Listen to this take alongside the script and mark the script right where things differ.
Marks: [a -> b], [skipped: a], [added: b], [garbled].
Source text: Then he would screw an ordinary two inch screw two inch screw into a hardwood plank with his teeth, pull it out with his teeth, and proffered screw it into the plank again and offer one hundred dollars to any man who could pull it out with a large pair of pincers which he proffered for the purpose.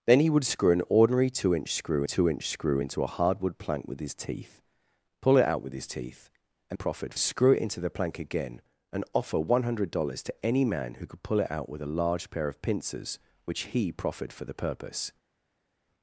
Then he would screw an ordinary two inch screw two inch screw into a hardwood plank with his teeth, pull it out with his teeth, and proffered screw it into the plank again and offer one hundred dollars to any man who could pull it out with a large pair of pincers which he proffered for the purpose.